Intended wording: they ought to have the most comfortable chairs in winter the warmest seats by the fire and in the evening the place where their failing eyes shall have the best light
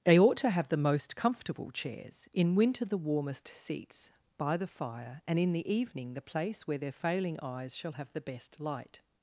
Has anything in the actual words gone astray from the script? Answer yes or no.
no